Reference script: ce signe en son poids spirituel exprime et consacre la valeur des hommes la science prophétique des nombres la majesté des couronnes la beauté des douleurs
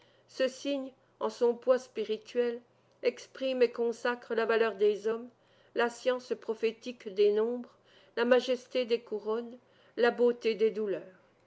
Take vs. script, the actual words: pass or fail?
pass